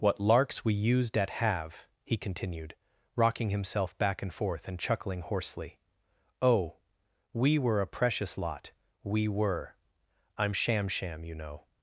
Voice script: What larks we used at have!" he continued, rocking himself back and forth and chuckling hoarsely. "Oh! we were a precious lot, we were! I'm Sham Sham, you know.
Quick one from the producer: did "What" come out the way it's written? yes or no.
yes